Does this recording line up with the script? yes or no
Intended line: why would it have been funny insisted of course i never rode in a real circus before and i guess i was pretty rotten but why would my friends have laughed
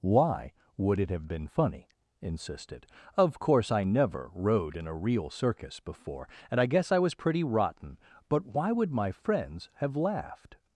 yes